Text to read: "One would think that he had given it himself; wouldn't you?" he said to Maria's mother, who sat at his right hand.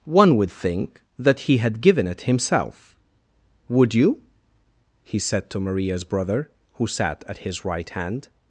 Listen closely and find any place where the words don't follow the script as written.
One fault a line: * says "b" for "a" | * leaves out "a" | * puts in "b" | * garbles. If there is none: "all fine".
* says "would" for "wouldn't"
* says "brother" for "mother"